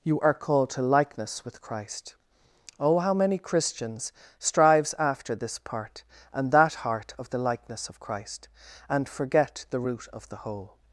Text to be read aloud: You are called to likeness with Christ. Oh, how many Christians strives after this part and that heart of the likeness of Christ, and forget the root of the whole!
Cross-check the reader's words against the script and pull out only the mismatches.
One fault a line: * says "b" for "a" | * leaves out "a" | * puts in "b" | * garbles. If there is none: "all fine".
all fine